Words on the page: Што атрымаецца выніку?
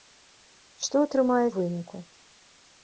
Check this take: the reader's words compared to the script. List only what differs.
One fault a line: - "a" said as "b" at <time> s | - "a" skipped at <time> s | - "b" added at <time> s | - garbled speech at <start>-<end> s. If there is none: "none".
none